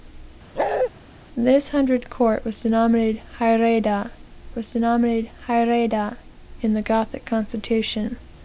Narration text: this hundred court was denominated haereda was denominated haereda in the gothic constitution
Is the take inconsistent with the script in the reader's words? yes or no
no